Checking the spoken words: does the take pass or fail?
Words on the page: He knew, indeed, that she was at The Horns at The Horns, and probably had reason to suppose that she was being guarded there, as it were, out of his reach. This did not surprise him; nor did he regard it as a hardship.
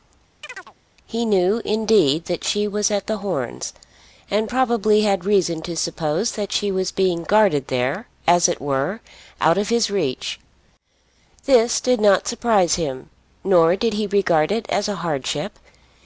fail